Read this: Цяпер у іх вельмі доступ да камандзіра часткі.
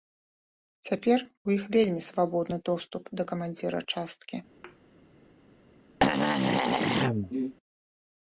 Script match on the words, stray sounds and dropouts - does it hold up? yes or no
no